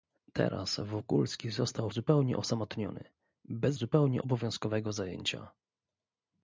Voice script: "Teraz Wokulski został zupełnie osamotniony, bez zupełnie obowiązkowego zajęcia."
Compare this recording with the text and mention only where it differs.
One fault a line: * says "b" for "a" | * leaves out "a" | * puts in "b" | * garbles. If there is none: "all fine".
all fine